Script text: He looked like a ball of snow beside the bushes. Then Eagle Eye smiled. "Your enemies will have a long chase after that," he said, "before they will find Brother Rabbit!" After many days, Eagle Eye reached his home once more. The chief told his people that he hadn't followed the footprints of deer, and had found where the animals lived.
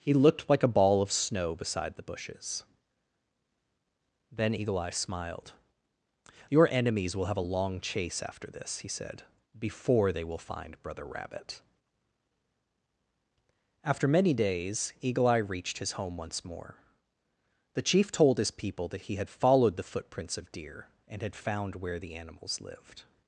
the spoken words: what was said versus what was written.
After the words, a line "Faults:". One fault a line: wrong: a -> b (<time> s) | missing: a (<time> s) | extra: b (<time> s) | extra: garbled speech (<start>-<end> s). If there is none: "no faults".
He looked like a ball of snow beside the bushes. Then Eagle Eye smiled. "Your enemies will have a long chase after this," he said, "before they will find Brother Rabbit!" After many days, Eagle Eye reached his home once more. The chief told his people that he had followed the footprints of deer, and had found where the animals lived.
Faults:
wrong: that -> this (8.5 s)
wrong: hadn't -> had (19.2 s)